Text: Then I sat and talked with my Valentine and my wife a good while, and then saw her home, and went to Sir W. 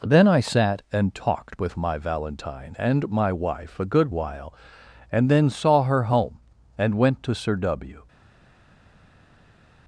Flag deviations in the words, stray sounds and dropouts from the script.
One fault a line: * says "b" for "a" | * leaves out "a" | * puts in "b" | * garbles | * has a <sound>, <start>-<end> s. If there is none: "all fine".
all fine